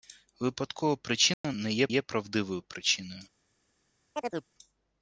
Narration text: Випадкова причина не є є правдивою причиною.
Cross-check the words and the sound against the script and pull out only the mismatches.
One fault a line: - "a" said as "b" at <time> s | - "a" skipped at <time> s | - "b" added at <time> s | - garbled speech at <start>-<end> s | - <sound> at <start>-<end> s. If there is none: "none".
- dropout at 1.3-1.4 s
- chirp at 4.1-4.5 s